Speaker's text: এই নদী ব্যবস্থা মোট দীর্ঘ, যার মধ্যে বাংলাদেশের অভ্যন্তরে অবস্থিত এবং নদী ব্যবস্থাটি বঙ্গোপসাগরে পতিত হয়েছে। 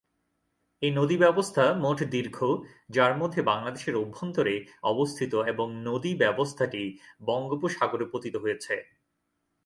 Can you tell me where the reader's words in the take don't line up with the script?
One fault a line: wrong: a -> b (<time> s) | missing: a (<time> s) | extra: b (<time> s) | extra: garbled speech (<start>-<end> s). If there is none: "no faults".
no faults